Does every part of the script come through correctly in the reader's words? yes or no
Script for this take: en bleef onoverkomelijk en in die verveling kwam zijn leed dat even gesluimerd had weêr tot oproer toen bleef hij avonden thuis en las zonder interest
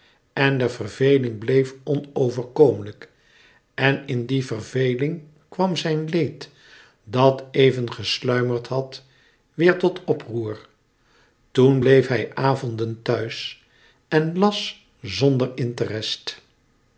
no